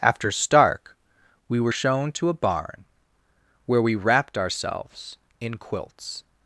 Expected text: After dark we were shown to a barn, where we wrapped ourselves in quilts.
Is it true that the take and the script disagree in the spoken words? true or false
true